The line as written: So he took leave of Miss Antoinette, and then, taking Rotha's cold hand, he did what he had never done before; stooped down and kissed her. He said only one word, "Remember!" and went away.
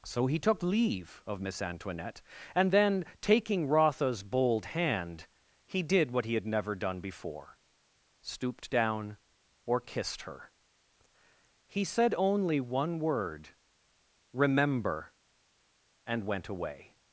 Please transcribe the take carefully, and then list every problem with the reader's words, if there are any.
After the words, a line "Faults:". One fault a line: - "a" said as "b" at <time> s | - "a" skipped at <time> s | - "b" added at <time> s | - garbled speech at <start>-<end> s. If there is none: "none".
So he took leave of Miss Antoinette, and then, taking Rotha's bold hand, he did what he had never done before; stooped down or kissed her. He said only one word, "Remember!" and went away.
Faults:
- "cold" said as "bold" at 4.2 s
- "and" said as "or" at 9.7 s